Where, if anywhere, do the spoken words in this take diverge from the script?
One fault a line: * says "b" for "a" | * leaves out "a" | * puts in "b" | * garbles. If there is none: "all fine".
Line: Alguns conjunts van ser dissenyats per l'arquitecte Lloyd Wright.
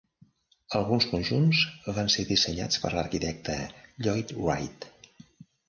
all fine